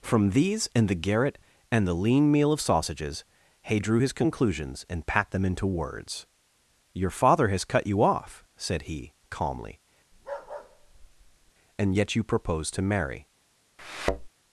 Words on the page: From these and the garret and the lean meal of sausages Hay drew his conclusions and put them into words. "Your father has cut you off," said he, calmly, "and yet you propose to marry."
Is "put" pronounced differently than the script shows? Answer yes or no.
yes